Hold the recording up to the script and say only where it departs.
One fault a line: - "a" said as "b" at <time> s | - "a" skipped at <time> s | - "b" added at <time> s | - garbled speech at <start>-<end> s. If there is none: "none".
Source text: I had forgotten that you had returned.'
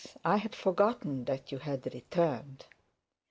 none